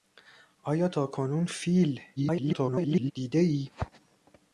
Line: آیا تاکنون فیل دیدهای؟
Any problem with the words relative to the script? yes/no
yes